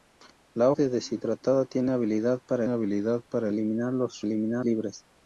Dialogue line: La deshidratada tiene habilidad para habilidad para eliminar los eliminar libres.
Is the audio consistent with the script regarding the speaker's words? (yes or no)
yes